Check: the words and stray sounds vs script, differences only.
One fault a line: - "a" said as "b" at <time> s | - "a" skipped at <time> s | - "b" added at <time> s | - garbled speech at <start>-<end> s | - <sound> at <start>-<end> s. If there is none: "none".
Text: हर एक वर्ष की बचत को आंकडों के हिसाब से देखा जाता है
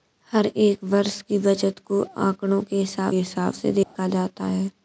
- "हिसाब" added at 3.1 s
- dropout at 3.8-4.0 s